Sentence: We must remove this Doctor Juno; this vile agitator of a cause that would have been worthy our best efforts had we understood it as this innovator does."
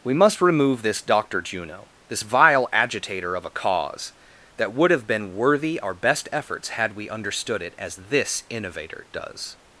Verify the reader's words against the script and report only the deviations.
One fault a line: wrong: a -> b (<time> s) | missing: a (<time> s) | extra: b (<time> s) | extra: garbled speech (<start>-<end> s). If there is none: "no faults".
no faults